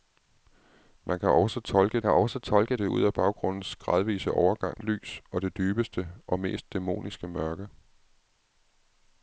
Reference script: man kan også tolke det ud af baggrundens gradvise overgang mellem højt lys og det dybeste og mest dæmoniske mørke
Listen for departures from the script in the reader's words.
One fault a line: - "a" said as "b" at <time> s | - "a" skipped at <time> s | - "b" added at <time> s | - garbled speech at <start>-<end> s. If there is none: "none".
- "kan også tolke" added at 2.0 s
- "mellem højt" skipped at 4.8 s